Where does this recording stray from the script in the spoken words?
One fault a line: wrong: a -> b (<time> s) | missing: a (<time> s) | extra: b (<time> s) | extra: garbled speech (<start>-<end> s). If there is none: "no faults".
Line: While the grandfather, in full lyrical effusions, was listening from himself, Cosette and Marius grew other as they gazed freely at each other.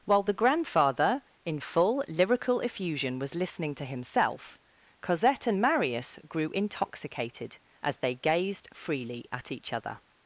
wrong: effusions -> effusion (2.6 s)
wrong: from -> to (3.8 s)
wrong: other -> intoxicated (6.5 s)